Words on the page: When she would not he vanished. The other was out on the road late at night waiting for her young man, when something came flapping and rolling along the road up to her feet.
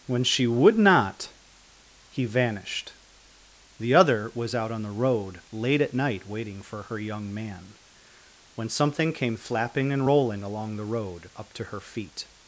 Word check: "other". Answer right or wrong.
right